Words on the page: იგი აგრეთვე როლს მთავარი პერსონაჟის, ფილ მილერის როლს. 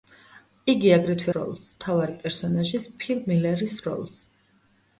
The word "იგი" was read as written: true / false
true